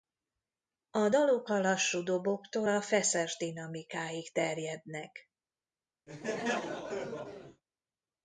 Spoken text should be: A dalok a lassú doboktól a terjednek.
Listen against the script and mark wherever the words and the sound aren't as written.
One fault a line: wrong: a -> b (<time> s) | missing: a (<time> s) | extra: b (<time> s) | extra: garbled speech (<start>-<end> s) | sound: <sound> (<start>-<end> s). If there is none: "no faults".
extra: feszes dinamikáig (2.8 s)
sound: laugh (6.1-7.6 s)